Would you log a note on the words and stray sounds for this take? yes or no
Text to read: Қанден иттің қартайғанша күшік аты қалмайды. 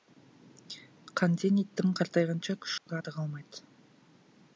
yes